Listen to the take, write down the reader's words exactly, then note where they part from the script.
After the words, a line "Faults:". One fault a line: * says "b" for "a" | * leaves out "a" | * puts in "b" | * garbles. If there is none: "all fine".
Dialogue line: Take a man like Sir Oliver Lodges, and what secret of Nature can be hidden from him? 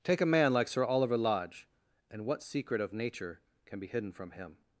Take a man like Sir Oliver Lodge, and what secret of Nature can be hidden from him?
Faults:
* says "Lodge" for "Lodges"